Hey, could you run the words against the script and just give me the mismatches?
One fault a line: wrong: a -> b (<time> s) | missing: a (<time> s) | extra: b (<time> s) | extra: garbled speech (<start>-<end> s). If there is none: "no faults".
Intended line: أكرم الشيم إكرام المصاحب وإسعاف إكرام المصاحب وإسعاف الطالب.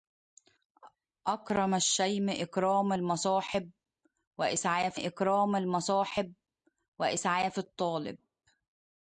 no faults